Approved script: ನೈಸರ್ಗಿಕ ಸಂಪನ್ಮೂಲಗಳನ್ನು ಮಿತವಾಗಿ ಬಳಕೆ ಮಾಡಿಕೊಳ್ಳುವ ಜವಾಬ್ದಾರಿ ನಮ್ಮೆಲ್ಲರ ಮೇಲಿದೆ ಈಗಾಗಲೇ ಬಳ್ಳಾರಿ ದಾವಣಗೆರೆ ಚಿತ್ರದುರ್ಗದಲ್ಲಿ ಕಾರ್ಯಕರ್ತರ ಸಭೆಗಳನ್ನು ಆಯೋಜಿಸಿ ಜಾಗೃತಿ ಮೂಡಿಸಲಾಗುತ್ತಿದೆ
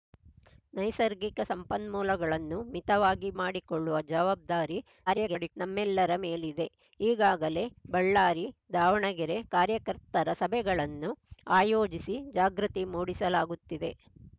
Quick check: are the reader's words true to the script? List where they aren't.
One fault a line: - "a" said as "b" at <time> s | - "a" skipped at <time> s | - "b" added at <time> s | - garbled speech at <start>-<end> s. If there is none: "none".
- "ಬಳಕೆ" skipped at 3.3 s
- garbled speech at 5.1-5.5 s
- "ಚಿತ್ರದುರ್ಗದಲ್ಲಿ" skipped at 9.4 s